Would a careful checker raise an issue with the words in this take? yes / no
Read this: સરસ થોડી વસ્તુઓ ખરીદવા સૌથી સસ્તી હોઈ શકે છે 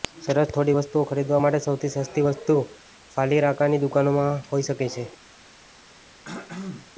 yes